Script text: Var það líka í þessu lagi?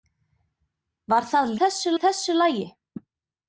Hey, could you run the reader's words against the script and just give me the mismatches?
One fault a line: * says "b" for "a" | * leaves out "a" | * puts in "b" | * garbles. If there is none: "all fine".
* says "þessu" for "líka"